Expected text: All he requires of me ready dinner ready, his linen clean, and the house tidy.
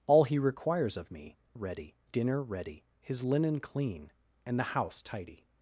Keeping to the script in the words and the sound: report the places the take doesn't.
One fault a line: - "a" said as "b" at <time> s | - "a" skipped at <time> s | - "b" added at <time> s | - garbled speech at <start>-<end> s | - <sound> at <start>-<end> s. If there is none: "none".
none